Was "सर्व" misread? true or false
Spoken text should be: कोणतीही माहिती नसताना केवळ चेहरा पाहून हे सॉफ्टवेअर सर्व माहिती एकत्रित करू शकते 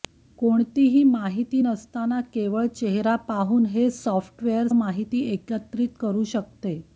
true